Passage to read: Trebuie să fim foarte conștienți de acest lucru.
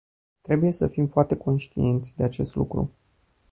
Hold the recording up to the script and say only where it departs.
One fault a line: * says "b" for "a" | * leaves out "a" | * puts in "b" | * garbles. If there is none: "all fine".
all fine